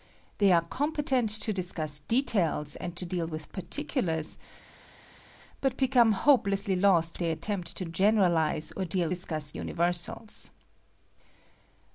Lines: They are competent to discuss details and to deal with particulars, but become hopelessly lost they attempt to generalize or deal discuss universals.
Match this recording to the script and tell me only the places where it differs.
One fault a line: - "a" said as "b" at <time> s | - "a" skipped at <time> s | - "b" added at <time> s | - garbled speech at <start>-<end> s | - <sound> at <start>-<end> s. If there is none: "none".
none